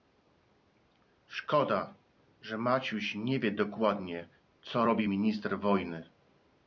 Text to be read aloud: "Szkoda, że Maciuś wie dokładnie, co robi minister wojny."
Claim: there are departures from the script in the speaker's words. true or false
true